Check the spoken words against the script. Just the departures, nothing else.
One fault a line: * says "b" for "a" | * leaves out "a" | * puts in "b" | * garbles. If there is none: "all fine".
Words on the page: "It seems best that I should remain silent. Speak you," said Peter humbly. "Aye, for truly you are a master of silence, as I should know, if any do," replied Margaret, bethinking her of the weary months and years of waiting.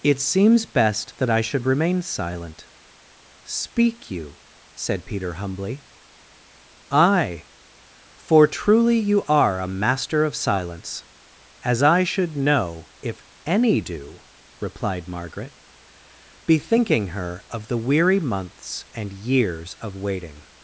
all fine